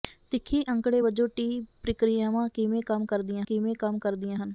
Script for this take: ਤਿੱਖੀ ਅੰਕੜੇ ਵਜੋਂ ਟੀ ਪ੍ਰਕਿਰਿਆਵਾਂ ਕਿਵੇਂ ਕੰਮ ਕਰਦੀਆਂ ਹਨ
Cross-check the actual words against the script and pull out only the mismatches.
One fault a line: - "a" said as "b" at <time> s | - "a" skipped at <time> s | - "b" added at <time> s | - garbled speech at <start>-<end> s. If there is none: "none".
- "ਕਿਵੇਂ ਕੰਮ ਕਰਦੀਆਂ" added at 3.4 s